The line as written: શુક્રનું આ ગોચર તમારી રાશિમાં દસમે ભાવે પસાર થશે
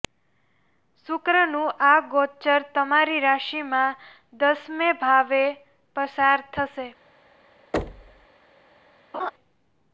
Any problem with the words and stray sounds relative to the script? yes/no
yes